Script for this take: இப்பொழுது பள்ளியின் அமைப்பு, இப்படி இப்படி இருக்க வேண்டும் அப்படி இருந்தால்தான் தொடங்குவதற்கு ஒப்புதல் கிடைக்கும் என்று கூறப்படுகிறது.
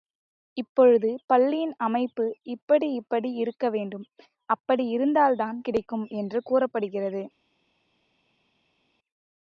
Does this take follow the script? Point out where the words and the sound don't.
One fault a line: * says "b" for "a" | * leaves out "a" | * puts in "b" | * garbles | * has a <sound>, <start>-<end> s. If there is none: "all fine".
* leaves out "தொடங்குவதற்கு ஒப்புதல்"